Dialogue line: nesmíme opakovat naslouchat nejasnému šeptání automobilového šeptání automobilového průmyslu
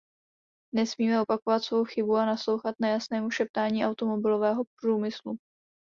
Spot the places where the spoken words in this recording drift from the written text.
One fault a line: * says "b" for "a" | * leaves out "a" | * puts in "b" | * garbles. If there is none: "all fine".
* puts in "svou chybu a"
* leaves out "šeptání automobilového"